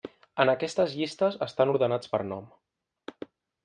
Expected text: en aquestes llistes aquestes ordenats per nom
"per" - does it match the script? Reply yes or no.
yes